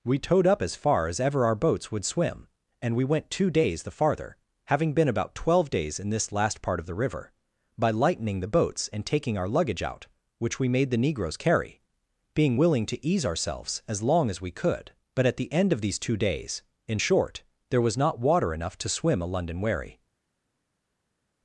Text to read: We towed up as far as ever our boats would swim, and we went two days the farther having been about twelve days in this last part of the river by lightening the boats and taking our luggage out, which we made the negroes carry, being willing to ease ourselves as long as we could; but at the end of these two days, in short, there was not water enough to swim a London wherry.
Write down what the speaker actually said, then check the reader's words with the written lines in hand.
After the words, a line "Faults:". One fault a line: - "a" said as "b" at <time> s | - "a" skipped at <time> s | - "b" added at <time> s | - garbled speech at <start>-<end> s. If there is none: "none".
We towed up as far as ever our boats would swim, and we went two days the farther having been about twelve days in this last part of the river by lightening the boats and taking our luggage out, which we made the negroes carry, being willing to ease ourselves as long as we could; but at the end of these two days, in short, there was not water enough to swim a London wherry.
Faults:
none